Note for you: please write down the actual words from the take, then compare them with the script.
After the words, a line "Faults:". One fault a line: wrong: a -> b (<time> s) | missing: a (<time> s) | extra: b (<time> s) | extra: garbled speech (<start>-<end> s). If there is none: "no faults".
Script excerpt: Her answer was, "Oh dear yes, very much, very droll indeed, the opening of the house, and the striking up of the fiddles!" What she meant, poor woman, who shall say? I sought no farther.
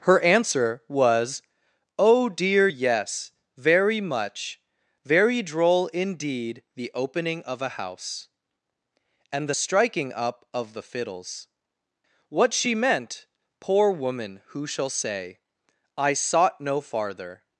Her answer was, "Oh dear yes, very much, very droll indeed, the opening of a house, and the striking up of the fiddles!" What she meant, poor woman, who shall say? I sought no farther.
Faults:
wrong: the -> a (7.6 s)